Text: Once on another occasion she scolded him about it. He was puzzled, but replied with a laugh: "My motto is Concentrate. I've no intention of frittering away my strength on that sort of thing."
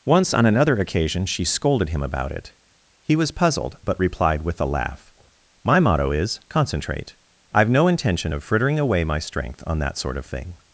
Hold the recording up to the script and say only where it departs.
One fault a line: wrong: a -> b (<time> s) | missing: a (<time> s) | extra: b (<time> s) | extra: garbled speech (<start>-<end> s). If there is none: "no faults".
no faults